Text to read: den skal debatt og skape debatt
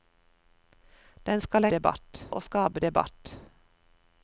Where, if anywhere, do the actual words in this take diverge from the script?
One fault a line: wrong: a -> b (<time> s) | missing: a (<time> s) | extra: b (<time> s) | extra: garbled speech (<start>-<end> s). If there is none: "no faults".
no faults